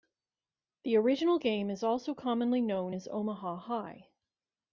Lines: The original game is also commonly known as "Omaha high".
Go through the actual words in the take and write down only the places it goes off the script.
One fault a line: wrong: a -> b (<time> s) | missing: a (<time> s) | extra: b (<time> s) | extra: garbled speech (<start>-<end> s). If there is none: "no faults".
no faults